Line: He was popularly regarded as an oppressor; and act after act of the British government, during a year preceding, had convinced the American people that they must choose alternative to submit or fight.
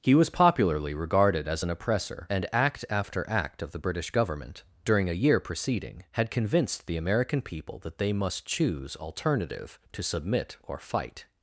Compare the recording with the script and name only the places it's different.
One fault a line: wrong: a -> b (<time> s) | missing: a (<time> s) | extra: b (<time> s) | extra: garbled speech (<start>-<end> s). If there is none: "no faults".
no faults